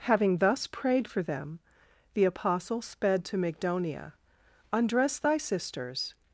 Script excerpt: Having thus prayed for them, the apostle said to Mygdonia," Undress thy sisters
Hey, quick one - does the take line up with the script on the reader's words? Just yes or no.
no